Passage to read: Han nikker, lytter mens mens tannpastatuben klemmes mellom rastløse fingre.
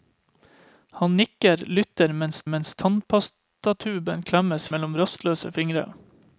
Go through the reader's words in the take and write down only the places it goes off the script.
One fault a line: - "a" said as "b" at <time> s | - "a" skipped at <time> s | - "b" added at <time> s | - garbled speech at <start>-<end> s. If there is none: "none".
none